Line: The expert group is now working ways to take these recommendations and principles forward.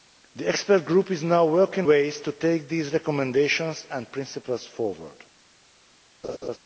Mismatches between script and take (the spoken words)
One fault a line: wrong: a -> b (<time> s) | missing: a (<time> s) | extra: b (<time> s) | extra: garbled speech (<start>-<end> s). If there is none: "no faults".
no faults